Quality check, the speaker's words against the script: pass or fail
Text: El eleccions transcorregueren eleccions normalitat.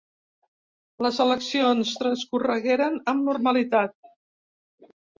fail